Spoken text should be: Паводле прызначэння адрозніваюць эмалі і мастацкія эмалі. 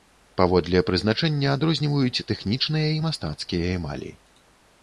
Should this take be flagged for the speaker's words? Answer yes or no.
yes